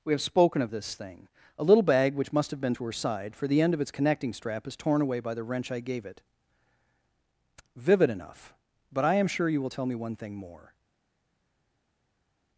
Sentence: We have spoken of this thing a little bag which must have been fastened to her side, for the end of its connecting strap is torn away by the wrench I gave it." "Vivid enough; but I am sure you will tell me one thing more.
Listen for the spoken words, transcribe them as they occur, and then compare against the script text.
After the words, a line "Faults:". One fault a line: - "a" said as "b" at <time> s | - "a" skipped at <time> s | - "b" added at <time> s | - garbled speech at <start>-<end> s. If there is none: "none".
We have spoken of this thing a little bag which must have been to her side, for the end of its connecting strap is torn away by the wrench I gave it." "Vivid enough; but I am sure you will tell me one thing more.
Faults:
- "fastened" skipped at 2.7 s